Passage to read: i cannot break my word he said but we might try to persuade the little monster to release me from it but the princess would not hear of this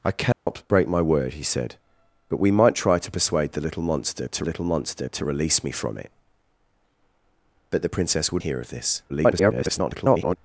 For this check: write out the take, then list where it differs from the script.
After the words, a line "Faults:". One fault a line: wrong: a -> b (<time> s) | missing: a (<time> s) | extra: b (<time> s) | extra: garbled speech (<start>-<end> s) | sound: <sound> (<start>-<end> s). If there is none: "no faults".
i cannot break my word he said but we might try to persuade the little monster to little monster to release me from it but the princess would hear of this [garbled]
Faults:
sound: dropout (0.3-0.5 s)
extra: little monster to (4.4 s)
missing: not (8.4 s)
extra: garbled speech (9.1-10.4 s)